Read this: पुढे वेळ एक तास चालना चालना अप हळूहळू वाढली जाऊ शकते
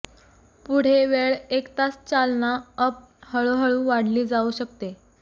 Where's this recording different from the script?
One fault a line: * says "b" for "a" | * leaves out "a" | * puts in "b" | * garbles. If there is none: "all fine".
* leaves out "चालना"